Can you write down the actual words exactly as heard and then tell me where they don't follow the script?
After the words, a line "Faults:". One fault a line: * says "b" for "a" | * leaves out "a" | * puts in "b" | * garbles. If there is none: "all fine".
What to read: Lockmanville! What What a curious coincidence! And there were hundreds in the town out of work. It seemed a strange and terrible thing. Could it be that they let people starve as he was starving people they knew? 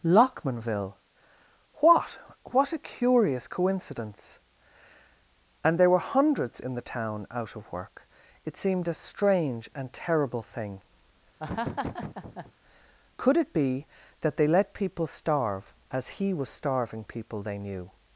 Lockmanville! What What a curious coincidence! And there were hundreds in the town out of work. It seemed a strange and terrible thing. Could it be that they let people starve as he was starving people they knew?
Faults:
all fine